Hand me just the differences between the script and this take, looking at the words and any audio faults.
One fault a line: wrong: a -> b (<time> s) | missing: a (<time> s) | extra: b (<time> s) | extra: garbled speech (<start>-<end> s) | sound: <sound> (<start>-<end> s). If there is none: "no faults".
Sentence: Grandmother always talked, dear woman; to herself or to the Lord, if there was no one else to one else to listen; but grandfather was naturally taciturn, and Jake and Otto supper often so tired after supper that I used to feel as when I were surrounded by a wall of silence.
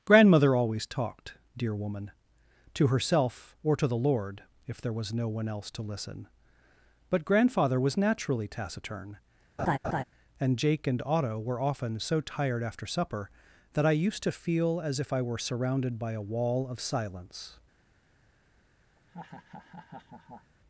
missing: one else to (5.8 s)
sound: laugh (9.6-10.0 s)
wrong: supper -> were (11.4 s)
wrong: when -> if (15.0 s)
sound: laugh (19.0-20.5 s)